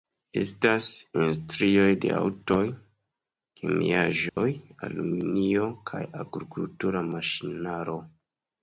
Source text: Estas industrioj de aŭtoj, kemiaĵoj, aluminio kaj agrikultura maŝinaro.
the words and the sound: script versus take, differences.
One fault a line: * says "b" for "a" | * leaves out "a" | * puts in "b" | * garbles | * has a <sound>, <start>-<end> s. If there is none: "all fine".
* has a dropout, 4.3-4.4 s